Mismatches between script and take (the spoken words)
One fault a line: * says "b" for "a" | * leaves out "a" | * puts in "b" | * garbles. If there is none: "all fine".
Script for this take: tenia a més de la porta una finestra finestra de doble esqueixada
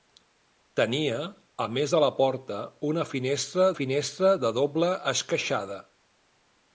all fine